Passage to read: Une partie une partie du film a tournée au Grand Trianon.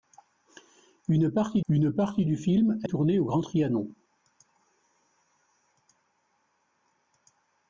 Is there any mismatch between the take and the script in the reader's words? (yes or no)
no